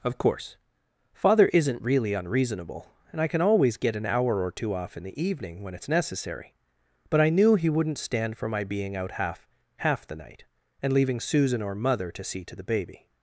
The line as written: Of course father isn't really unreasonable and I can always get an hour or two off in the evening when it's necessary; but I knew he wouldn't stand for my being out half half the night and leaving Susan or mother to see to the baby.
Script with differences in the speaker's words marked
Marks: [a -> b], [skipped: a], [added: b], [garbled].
Of course father isn't really unreasonable and I can always get an hour or two off in the evening when it's necessary; but I knew he wouldn't stand for my being out half half the night and leaving Susan or mother to see to the baby.